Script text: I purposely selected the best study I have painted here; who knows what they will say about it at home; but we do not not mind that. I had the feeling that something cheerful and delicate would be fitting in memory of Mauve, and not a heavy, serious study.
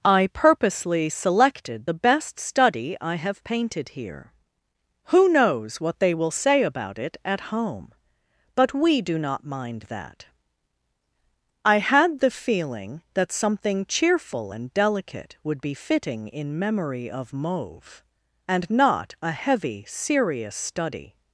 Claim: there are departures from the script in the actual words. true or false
true